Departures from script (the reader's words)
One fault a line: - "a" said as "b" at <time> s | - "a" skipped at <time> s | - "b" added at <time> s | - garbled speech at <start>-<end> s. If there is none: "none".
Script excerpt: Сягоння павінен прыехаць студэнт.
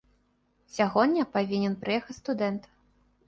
none